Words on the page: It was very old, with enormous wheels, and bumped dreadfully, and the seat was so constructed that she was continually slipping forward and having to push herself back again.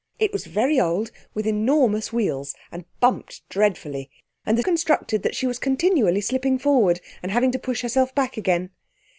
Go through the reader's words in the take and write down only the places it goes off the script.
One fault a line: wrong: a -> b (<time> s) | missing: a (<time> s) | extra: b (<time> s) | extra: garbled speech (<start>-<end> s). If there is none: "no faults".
missing: seat was so (4.6 s)